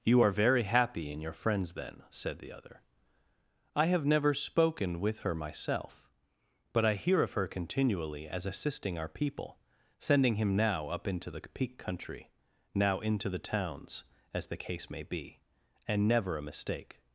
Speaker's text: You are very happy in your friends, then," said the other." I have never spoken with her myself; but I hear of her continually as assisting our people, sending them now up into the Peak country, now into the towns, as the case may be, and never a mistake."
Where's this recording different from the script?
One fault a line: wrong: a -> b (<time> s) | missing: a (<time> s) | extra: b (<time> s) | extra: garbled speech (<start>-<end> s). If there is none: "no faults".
wrong: them -> him (10.4 s)